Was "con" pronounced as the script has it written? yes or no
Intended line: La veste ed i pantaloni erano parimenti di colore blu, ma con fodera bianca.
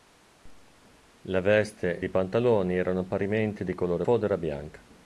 no